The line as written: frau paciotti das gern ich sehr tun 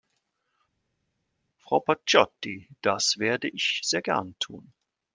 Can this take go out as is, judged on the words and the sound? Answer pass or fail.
fail